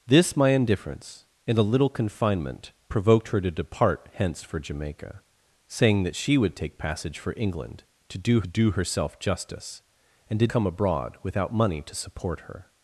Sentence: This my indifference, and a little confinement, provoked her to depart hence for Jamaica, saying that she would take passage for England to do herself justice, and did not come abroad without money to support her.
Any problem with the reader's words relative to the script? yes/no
yes